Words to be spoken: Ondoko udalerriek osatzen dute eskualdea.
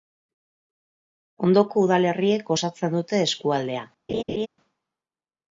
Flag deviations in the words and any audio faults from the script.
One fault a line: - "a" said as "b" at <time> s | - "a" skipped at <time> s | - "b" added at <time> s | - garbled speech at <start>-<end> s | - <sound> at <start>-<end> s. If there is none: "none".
- laugh at 4.1-4.5 s